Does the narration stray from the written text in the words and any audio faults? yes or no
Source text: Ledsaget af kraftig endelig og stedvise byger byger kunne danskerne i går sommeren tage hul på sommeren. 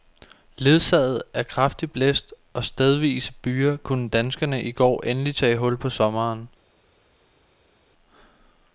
yes